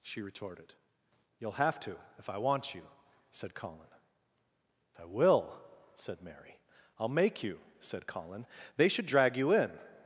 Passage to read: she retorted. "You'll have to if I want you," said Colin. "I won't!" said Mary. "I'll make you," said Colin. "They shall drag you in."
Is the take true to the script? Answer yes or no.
no